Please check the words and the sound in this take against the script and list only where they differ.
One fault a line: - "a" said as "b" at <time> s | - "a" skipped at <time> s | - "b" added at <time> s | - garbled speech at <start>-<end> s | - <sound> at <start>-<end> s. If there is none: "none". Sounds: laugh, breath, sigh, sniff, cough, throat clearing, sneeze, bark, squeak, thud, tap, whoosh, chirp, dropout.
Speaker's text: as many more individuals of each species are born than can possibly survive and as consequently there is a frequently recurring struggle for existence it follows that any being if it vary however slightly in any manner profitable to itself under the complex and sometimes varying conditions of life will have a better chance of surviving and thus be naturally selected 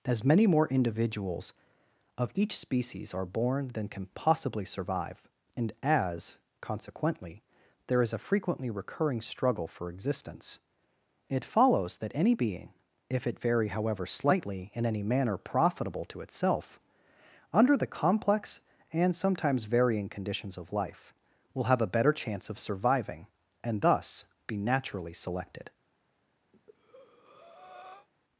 - breath at 26.5-28.1 s